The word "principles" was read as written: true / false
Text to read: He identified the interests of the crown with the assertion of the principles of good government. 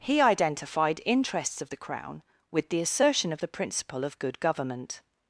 false